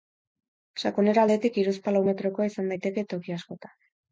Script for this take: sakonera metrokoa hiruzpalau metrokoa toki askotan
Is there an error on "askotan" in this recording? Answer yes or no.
no